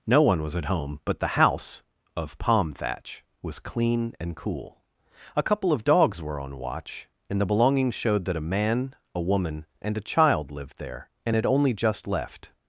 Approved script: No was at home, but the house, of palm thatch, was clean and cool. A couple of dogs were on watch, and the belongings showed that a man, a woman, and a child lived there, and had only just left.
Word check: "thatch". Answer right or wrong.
right